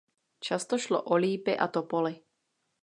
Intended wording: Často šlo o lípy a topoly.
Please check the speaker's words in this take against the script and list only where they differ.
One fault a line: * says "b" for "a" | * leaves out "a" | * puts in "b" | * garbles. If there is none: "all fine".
all fine